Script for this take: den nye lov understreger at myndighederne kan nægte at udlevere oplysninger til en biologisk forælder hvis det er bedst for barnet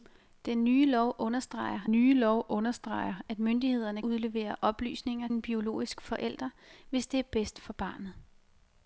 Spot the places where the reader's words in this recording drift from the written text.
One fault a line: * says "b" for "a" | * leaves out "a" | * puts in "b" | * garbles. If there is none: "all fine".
* says "nye lov understreger at myndighederne" for "at myndighederne kan nægte at"
* leaves out "til"